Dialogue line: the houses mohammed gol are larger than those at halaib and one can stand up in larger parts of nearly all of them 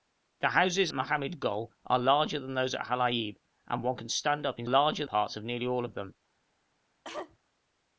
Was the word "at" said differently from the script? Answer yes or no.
no